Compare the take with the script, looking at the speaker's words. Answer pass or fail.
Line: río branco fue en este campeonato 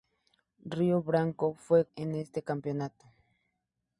pass